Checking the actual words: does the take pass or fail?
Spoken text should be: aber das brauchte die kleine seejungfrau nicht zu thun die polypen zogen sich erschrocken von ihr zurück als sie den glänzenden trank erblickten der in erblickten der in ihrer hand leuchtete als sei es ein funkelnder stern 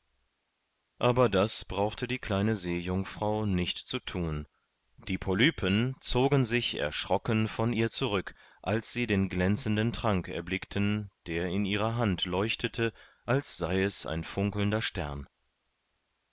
fail